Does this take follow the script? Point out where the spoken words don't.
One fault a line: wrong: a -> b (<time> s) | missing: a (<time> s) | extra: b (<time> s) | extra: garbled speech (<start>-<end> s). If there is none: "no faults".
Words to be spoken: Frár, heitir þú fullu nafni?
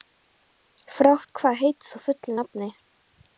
extra: hvað (1.4 s)